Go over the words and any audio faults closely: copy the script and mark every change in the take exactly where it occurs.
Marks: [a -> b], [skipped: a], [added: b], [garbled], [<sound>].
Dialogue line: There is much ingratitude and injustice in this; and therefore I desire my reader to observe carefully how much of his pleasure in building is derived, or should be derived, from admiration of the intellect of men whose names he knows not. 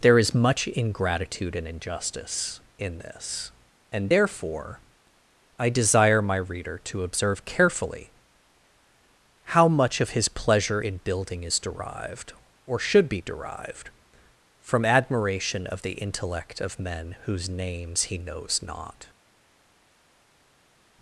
There is much ingratitude and injustice in this; and therefore I desire my reader to observe carefully how much of his pleasure in building is derived, or should be derived, from admiration of the intellect of men whose names he knows not.